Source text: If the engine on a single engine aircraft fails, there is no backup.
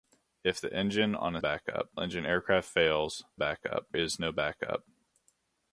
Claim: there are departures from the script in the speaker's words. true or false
true